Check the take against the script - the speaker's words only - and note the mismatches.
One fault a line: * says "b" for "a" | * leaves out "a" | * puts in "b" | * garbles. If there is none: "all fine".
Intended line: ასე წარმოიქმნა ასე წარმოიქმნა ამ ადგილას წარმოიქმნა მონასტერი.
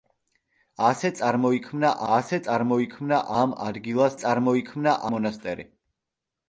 all fine